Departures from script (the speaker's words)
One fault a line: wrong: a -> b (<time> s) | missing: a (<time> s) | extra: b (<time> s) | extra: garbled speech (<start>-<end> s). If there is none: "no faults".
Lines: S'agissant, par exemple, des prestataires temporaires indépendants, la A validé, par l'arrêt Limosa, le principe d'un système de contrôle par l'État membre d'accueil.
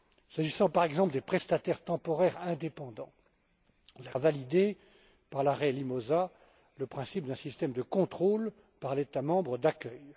no faults